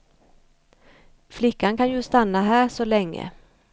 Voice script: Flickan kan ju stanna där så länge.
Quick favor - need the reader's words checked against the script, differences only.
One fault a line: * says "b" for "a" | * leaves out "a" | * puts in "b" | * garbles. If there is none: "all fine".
* says "här" for "där"